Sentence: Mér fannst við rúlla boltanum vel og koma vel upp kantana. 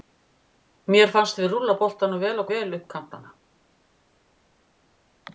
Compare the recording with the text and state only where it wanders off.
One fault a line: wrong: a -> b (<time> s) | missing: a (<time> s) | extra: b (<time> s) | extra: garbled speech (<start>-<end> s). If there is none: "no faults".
missing: koma (2.5 s)